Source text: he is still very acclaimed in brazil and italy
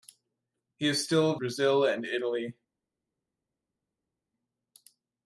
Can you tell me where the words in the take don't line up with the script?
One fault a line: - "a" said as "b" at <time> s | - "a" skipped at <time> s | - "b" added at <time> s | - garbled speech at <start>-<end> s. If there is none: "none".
- "very acclaimed in" skipped at 1.4 s